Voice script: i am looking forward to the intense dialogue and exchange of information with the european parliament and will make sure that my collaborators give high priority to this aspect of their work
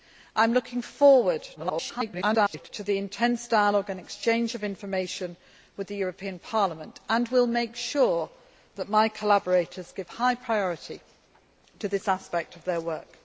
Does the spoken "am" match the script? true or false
true